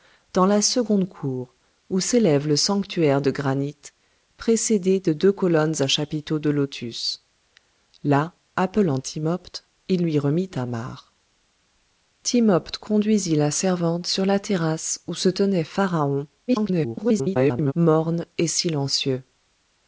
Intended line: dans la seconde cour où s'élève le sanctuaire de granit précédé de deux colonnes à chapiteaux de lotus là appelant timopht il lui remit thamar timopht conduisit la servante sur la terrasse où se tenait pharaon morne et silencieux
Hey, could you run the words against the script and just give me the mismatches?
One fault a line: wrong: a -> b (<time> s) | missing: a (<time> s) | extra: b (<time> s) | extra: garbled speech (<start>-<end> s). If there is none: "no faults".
extra: garbled speech (16.5-17.7 s)